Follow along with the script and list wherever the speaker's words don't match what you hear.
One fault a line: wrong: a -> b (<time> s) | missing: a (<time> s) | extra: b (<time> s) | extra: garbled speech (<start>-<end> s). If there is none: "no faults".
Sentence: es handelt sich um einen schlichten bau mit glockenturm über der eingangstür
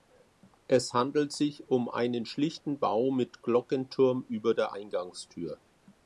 no faults